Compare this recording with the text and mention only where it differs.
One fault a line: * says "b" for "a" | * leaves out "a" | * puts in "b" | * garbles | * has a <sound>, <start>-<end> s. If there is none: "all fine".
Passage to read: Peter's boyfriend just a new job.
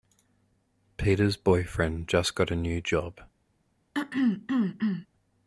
* puts in "got"
* has a throat clearing, 3.9-5.1 s